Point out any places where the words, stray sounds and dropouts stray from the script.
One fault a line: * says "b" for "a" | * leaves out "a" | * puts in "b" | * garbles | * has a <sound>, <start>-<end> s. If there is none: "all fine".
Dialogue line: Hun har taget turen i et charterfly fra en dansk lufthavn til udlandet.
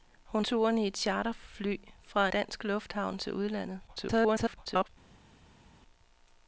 * leaves out "har taget"
* leaves out "en"
* garbles